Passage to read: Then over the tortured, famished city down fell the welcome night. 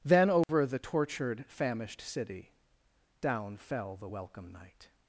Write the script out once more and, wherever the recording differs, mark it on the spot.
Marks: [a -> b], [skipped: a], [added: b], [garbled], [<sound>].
Then over [dropout] the tortured, famished city down fell the welcome night.